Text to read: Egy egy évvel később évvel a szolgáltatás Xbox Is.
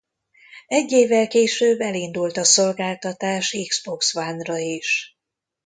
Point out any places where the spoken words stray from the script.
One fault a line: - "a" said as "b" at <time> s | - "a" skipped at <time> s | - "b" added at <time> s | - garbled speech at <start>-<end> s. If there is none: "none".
- "egy" skipped at 0.9 s
- "évvel" said as "elindult" at 1.8 s
- "One ra" added at 4.1 s